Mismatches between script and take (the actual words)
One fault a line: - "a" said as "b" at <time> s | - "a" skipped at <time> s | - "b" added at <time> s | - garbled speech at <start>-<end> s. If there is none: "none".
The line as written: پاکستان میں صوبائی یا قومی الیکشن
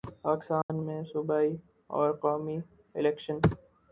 - "یا" said as "اور" at 1.9 s